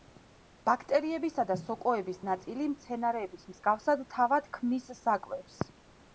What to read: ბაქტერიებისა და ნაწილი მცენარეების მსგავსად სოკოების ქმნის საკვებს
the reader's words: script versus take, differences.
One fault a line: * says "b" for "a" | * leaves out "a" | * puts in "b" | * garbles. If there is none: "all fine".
* puts in "სოკოების"
* says "თავად" for "სოკოების"